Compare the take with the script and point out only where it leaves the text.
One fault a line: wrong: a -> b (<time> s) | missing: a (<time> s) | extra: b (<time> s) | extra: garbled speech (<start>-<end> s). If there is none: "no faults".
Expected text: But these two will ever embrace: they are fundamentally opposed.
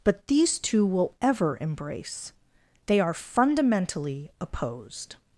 no faults